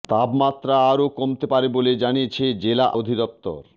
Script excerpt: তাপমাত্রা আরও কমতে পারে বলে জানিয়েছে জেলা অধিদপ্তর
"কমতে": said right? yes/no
yes